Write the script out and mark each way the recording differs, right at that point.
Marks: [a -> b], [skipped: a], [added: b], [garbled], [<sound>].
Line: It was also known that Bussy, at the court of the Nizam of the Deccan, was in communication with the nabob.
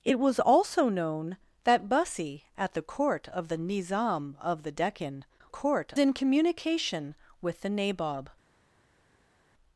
It was also known that Bussy, at the court of the Nizam of the Deccan, [was -> court] in communication with the nabob.